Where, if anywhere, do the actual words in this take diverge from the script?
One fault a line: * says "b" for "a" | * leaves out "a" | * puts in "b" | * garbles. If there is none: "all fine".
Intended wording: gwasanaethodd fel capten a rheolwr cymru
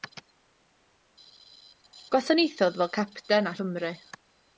* leaves out "rheolwr"